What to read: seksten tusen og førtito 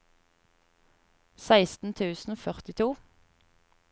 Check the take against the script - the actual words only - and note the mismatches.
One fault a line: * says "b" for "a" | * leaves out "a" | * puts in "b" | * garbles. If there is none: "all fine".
all fine